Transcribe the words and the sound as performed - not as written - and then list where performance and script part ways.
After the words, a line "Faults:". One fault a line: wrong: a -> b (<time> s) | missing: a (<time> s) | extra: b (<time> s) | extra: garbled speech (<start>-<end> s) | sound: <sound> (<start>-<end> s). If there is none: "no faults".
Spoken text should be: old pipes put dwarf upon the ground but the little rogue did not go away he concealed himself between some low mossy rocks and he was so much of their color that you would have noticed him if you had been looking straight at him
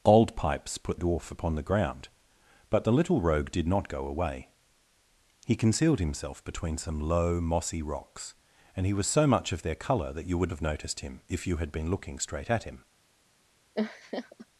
old pipes put dwarf upon the ground but the little rogue did not go away he concealed himself between some low mossy rocks and he was so much of their color that you would have noticed him if you had been looking straight at him
Faults:
sound: laugh (13.7-14.5 s)